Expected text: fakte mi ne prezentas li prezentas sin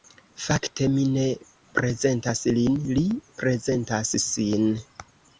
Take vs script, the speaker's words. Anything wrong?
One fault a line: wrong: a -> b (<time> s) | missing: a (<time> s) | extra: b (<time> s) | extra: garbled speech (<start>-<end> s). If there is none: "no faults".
extra: lin (2.5 s)